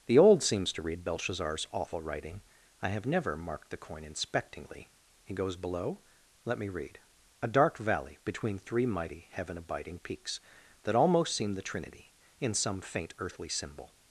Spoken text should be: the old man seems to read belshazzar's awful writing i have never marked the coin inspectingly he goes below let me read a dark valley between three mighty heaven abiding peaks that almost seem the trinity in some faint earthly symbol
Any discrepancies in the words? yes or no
yes